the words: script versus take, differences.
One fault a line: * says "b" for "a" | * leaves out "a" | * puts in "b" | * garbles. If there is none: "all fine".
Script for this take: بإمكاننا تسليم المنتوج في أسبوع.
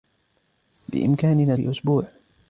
* leaves out "تسليم المنتوج"